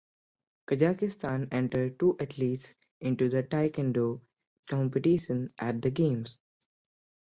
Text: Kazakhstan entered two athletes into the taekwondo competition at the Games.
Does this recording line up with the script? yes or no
yes